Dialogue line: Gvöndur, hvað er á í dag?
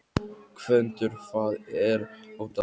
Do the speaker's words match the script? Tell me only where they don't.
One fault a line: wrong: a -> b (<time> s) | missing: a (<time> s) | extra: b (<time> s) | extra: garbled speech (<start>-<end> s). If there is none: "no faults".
no faults